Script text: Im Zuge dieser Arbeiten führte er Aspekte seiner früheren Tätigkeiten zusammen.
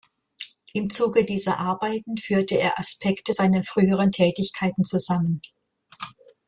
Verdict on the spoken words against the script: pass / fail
pass